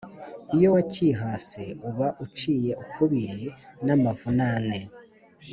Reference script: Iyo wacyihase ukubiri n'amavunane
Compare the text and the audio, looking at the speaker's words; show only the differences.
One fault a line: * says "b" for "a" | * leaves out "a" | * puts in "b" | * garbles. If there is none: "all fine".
* puts in "uba uciye"